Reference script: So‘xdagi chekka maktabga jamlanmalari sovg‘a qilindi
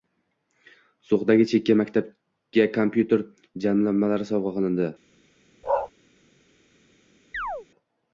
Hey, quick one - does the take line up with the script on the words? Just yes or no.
no